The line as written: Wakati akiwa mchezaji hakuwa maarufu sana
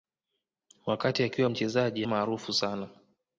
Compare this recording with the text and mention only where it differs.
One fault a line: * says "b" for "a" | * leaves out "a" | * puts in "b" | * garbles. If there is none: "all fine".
* leaves out "hakuwa"